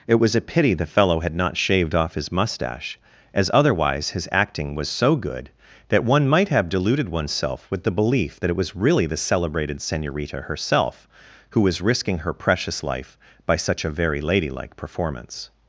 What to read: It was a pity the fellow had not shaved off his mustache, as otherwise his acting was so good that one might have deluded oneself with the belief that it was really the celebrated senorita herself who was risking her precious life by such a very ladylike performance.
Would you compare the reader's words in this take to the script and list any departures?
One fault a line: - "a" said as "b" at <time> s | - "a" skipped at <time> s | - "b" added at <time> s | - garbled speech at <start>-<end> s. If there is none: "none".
none